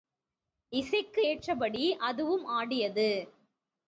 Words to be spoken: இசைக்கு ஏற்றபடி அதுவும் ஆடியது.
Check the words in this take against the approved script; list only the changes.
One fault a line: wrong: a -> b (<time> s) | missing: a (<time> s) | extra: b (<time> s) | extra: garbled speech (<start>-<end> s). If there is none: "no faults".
no faults